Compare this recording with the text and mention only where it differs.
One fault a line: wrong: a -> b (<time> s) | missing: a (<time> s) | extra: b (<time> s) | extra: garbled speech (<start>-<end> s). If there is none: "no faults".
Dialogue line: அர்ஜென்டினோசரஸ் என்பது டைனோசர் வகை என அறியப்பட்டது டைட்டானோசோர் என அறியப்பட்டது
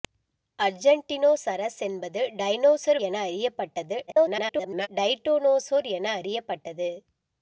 missing: வகை (3.0 s)
extra: garbled speech (4.1-4.9 s)